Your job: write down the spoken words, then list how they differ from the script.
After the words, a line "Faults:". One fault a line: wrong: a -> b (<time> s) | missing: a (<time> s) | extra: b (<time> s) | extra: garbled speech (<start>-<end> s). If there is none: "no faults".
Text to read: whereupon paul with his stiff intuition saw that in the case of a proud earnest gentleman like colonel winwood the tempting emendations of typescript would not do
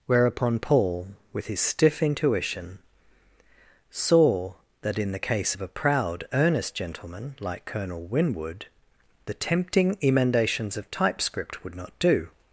whereupon paul with his stiff intuition saw that in the case of a proud earnest gentleman like colonel winwood the tempting emendations of typescript would not do
Faults:
no faults